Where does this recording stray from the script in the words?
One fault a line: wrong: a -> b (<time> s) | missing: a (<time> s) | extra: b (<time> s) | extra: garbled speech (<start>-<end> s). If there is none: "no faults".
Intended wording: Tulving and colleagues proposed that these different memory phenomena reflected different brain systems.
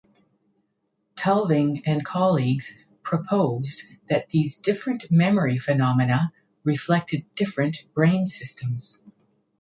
no faults